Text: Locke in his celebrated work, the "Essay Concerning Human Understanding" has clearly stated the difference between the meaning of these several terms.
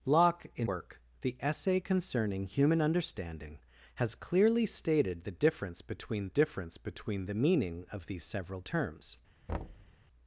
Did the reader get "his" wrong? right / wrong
wrong